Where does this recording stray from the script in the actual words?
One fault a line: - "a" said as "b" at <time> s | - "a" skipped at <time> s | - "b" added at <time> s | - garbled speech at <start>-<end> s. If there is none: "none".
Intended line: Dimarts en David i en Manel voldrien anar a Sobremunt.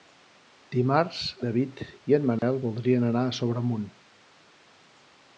- "en" skipped at 1.2 s